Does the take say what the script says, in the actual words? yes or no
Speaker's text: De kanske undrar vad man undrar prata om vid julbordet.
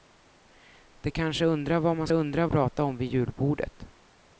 yes